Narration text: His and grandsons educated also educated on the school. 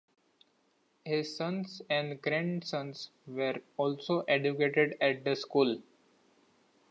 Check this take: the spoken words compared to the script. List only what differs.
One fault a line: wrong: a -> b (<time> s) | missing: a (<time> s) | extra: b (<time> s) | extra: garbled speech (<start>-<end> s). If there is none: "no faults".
extra: sons (1.4 s)
wrong: educated -> were (3.3 s)
wrong: on -> at (5.0 s)